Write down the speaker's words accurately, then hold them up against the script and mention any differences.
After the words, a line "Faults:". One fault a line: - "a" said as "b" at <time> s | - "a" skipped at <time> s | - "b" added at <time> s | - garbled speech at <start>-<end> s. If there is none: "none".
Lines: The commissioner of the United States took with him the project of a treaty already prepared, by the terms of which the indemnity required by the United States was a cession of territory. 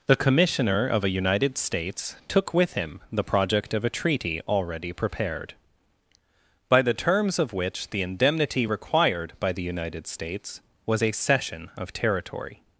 The commissioner of a United States took with him the project of a treaty already prepared, by the terms of which the indemnity required by the United States was a cession of territory.
Faults:
- "the" said as "a" at 1.0 s